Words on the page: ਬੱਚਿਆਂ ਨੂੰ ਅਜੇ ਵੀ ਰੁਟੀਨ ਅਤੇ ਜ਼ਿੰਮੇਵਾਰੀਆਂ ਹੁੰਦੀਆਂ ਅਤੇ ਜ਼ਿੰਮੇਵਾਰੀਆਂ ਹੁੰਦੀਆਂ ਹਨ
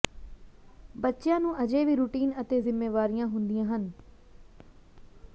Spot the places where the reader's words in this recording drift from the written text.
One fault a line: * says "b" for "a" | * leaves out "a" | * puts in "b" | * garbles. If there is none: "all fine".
* leaves out "ਅਤੇ ਜ਼ਿੰਮੇਵਾਰੀਆਂ ਹੁੰਦੀਆਂ"